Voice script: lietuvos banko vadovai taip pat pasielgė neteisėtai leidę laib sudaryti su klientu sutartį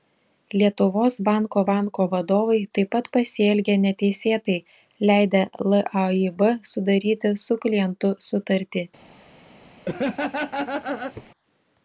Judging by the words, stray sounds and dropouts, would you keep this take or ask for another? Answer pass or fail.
fail